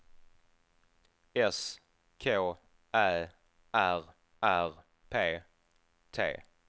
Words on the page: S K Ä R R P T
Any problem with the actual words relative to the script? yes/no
no